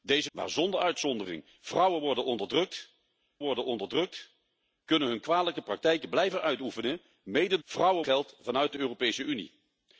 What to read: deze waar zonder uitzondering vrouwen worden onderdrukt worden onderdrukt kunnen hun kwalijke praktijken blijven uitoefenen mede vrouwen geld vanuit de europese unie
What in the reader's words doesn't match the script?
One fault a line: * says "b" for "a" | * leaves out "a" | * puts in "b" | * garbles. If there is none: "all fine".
all fine